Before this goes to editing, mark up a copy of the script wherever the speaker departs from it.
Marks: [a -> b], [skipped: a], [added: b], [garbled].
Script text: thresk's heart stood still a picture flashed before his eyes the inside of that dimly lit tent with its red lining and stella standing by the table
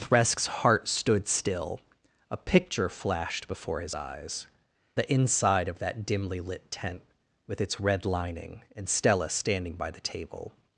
thresk's heart stood still a picture flashed before his eyes the inside of that dimly lit tent with its red lining and stella standing by the table